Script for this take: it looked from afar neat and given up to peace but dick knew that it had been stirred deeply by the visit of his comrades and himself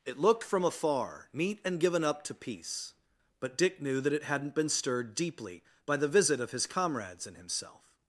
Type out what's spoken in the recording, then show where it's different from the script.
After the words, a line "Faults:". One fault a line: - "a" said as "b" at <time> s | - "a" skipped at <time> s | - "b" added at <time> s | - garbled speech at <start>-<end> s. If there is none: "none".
it looked from afar neat and given up to peace but dick knew that it hadn't been stirred deeply by the visit of his comrades and himself
Faults:
- "had" said as "hadn't" at 4.2 s